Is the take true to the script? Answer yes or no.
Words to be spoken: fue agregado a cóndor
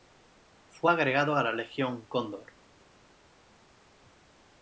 no